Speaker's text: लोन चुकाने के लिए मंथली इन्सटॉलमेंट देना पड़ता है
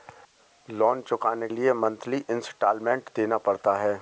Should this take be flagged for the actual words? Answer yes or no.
yes